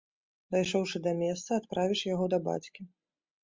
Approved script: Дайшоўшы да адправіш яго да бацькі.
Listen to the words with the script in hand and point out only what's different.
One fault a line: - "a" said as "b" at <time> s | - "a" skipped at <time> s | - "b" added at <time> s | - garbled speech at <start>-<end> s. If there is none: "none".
- "месца" added at 1.2 s